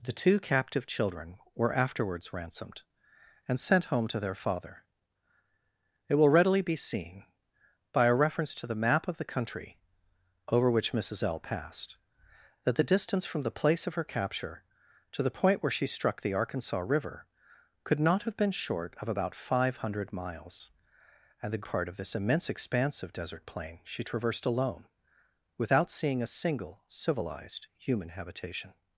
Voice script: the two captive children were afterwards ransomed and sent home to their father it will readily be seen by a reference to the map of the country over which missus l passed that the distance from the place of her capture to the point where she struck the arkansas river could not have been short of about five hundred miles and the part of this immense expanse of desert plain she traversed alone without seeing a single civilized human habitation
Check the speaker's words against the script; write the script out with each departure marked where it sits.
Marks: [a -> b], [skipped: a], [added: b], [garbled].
the two captive children were afterwards ransomed and sent home to their father it will readily be seen by a reference to the map of the country over which missus l passed that the distance from the place of her capture to the point where she struck the arkansas river could not have been short of about five hundred miles and the part of this immense expanse of desert plain she traversed alone without seeing a single civilized human habitation